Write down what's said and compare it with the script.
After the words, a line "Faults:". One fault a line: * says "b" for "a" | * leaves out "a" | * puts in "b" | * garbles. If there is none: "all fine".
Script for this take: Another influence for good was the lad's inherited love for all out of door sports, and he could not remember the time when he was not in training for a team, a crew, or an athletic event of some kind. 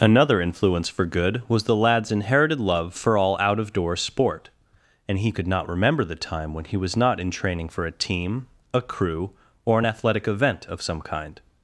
Another influence for good was the lad's inherited love for all out of door sport, and he could not remember the time when he was not in training for a team, a crew, or an athletic event of some kind.
Faults:
* says "sport" for "sports"